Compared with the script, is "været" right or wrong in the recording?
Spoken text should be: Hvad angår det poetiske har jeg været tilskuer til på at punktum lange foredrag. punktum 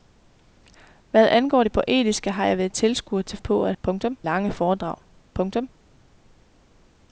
right